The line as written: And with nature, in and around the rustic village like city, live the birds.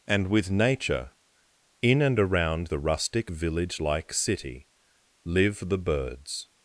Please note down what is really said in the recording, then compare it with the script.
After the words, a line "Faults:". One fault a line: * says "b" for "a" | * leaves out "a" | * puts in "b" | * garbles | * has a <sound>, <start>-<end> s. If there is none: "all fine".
And with nature, in and around the rustic village like city, live the birds.
Faults:
all fine